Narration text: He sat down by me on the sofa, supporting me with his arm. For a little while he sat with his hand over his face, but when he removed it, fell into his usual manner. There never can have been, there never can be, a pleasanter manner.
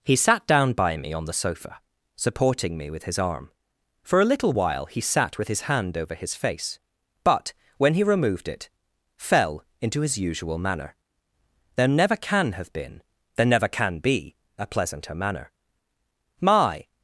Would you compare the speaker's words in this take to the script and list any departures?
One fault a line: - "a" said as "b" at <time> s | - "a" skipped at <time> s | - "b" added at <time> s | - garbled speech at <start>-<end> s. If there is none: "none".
- "My" added at 16.4 s